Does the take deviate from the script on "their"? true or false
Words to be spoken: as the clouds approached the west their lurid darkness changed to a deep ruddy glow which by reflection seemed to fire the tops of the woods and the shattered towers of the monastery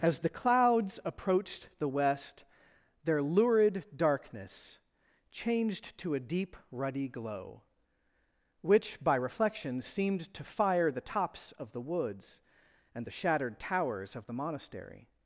false